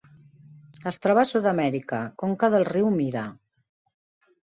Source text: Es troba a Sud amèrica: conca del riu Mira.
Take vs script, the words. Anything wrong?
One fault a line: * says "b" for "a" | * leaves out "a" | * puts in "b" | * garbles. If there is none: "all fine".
all fine